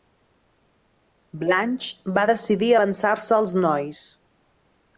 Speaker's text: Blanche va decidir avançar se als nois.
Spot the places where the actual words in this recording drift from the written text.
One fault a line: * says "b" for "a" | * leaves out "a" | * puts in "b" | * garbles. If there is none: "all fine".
all fine